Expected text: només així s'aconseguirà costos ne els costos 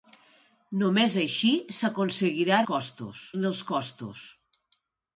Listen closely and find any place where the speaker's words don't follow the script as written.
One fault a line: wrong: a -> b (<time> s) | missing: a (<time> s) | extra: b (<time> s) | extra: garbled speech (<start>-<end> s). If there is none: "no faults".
no faults